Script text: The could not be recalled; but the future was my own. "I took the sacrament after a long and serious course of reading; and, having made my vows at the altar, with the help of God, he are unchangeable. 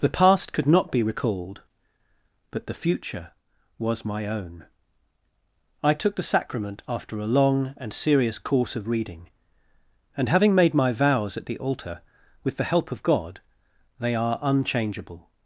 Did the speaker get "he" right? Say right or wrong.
wrong